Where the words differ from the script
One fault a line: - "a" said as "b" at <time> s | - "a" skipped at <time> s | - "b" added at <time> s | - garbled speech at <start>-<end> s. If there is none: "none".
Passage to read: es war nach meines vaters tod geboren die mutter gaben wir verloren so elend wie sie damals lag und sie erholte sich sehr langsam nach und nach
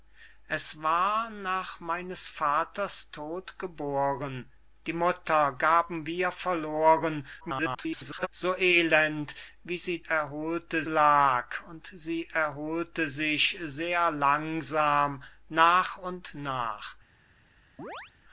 - garbled speech at 7.4-8.3 s
- "damals" said as "erholte" at 10.0 s